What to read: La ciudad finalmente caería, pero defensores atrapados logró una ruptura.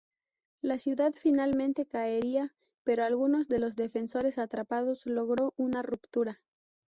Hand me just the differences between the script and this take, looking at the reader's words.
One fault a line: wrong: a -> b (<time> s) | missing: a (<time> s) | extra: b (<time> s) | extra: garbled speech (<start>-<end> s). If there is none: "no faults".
extra: algunos de los (3.0 s)